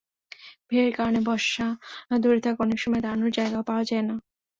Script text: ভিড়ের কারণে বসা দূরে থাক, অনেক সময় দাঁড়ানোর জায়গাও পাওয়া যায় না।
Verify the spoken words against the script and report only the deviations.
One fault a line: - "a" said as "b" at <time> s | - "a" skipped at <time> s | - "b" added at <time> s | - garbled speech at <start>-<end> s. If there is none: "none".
none